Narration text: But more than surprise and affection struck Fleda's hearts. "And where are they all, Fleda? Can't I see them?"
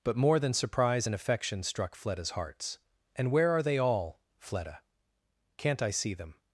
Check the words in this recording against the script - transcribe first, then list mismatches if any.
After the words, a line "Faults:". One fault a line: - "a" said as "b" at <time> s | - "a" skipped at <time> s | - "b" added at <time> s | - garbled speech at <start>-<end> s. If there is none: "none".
But more than surprise and affection struck Fleda's hearts. "And where are they all, Fleda? Can't I see them?"
Faults:
none